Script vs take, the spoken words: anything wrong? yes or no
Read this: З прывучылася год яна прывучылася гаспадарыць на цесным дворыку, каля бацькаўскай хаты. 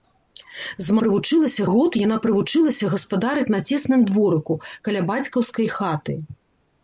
no